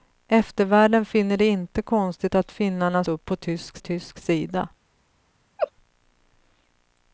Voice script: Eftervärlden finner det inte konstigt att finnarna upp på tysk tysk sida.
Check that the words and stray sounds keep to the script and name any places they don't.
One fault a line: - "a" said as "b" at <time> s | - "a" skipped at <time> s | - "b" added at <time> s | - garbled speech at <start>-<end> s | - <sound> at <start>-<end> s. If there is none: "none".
- laugh at 5.6-5.7 s